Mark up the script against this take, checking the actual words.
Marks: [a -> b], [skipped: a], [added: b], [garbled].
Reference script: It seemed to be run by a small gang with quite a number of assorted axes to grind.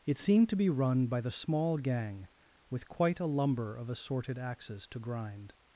It seemed to be run by [a -> the] small gang with quite a [number -> lumber] of assorted axes to grind.